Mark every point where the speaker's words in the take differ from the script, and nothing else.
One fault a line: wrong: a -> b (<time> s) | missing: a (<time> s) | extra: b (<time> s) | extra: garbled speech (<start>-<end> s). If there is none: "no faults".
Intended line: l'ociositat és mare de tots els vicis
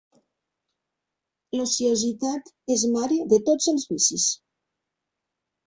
no faults